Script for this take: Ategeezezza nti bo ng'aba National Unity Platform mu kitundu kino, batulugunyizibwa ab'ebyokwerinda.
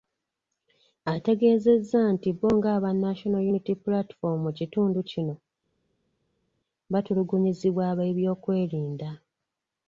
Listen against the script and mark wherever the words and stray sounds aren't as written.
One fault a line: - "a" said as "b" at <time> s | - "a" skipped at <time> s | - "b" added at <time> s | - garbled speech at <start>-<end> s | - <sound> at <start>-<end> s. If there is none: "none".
none